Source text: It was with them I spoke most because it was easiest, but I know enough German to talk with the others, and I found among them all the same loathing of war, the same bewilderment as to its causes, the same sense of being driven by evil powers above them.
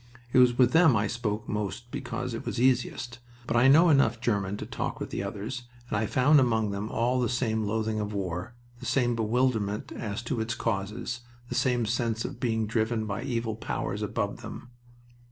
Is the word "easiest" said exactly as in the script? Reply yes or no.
yes